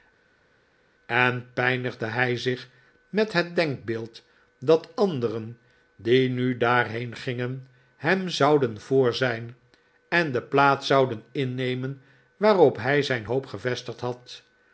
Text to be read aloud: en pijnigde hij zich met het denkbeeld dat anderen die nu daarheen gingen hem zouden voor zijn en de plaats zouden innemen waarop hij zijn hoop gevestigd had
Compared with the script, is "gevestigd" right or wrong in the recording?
right